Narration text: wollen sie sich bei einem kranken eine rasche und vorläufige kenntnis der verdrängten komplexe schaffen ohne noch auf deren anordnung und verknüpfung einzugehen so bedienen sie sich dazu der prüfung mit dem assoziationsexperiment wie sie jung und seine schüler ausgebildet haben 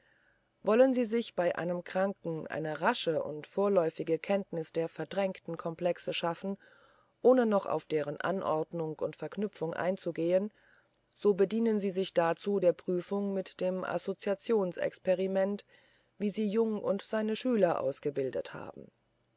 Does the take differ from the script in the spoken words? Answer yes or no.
no